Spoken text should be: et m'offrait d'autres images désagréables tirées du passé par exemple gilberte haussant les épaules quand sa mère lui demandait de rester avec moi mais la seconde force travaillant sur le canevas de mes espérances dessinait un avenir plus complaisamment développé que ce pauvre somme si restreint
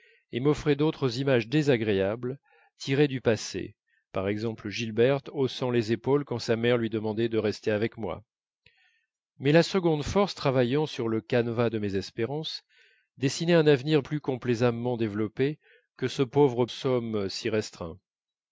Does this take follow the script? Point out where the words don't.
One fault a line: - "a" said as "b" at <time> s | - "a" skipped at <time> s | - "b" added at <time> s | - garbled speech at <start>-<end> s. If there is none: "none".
none